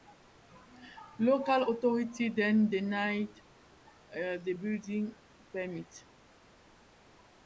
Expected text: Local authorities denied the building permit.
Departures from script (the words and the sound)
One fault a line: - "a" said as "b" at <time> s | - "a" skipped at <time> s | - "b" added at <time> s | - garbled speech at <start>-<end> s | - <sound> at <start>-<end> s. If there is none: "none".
- "then" added at 2.3 s